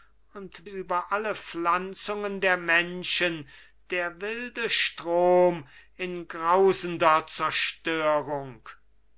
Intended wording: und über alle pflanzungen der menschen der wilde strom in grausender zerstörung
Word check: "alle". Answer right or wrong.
right